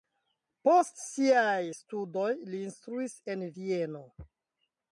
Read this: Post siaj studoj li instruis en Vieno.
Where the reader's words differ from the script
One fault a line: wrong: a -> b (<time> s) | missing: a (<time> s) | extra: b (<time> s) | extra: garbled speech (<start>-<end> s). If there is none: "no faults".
no faults